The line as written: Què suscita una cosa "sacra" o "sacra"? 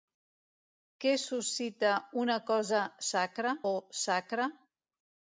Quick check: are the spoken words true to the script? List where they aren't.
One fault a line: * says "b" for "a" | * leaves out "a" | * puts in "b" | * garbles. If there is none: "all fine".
all fine